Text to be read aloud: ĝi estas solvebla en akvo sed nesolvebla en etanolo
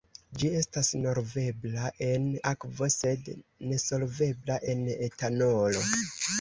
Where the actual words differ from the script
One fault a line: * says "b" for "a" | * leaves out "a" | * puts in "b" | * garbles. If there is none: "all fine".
all fine